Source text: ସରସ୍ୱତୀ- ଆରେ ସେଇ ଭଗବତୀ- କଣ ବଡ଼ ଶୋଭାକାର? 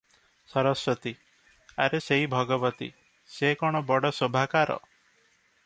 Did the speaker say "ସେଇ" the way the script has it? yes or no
yes